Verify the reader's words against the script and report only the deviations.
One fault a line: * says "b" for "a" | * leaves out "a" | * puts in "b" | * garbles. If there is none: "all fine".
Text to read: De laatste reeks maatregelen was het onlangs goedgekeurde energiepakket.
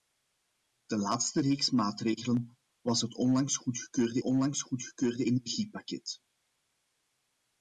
* puts in "onlangs goedgekeurde"